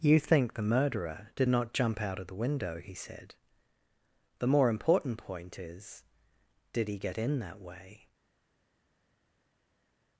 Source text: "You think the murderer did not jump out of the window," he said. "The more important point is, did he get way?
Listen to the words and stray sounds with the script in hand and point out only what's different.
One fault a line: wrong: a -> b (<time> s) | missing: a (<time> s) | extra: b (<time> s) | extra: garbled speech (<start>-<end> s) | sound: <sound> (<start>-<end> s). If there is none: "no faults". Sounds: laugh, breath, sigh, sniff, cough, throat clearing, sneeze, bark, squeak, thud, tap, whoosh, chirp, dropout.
extra: in that (7.2 s)